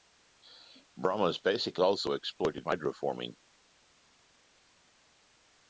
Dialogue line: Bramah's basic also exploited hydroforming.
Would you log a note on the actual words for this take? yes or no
no